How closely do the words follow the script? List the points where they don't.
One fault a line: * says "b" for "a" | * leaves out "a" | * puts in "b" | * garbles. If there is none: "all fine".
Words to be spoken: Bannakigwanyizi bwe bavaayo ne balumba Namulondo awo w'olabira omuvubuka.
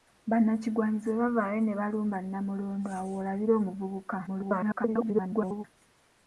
* garbles